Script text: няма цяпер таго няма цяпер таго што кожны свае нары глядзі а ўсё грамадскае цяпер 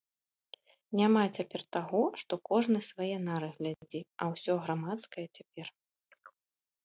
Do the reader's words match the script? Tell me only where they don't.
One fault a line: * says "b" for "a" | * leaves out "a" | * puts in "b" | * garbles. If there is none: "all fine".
* leaves out "няма цяпер таго"